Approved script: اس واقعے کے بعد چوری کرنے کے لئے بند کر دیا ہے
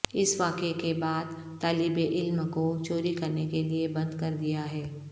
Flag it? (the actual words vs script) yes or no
yes